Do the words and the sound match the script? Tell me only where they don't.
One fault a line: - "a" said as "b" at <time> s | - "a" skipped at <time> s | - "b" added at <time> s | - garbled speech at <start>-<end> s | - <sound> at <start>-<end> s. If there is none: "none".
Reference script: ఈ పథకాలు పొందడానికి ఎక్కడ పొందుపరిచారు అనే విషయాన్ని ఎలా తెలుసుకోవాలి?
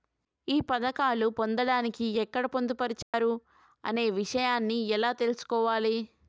- dropout at 3.0-3.1 s